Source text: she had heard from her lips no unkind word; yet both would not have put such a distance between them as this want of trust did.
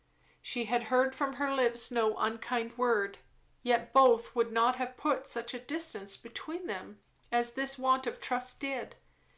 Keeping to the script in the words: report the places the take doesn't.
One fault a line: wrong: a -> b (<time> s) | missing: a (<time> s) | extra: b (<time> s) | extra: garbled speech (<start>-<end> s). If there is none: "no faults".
no faults